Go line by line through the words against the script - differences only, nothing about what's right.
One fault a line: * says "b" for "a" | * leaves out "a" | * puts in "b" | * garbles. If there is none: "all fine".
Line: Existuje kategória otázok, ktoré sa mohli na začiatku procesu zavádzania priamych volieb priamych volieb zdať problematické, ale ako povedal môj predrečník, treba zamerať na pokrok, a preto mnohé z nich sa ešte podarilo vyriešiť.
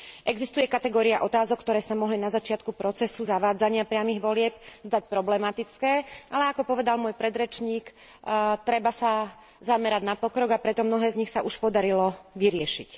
* leaves out "priamych volieb"
* puts in "sa"
* says "už" for "ešte"